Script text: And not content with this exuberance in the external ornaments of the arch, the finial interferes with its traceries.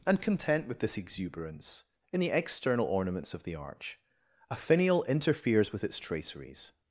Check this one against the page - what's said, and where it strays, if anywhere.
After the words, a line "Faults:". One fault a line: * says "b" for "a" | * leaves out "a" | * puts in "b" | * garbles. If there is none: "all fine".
And content with this exuberance in the external ornaments of the arch, a finial interferes with its traceries.
Faults:
* leaves out "not"
* says "a" for "the"